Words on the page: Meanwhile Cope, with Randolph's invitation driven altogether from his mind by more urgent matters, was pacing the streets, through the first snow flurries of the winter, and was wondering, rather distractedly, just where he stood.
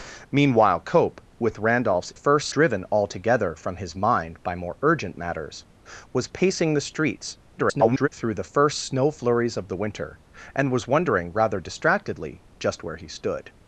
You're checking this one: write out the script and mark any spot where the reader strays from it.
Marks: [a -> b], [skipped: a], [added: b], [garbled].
Meanwhile Cope, with Randolph's [invitation -> first] driven altogether from his mind by more urgent matters, was pacing the streets, [garbled] through the first snow flurries of the winter, and was wondering, rather distractedly, just where he stood.